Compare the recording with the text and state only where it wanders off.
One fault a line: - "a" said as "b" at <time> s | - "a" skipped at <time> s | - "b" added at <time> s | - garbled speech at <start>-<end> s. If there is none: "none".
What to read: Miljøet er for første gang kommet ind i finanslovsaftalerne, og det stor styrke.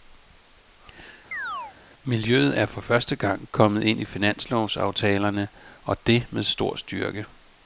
- "med" added at 6.3 s